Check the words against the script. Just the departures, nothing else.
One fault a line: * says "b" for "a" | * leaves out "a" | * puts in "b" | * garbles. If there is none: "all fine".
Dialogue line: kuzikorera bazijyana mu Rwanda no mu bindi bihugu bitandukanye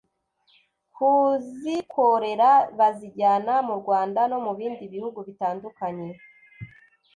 all fine